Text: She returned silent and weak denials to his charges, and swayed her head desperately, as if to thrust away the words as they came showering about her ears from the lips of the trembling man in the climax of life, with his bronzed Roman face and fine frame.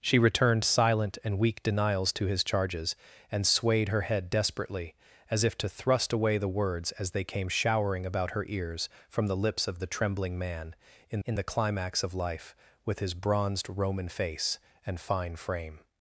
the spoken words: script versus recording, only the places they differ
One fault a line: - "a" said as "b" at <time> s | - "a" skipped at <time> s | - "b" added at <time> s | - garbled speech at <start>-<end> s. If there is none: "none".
- "in" added at 11.3 s